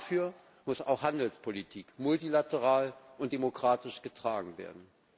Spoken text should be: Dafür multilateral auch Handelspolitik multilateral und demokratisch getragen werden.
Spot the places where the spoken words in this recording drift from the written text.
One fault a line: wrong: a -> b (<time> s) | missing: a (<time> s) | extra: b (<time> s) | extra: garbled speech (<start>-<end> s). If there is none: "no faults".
wrong: multilateral -> muss (0.6 s)